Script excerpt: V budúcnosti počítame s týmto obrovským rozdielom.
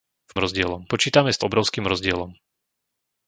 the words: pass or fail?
fail